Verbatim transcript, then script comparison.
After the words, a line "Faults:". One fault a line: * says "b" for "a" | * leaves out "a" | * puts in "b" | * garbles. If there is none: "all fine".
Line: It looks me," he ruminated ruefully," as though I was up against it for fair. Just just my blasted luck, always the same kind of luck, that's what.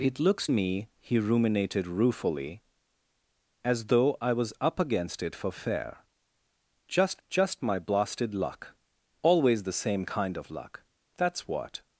It looks me," he ruminated ruefully," as though I was up against it for fair. Just just my blasted luck, always the same kind of luck, that's what.
Faults:
all fine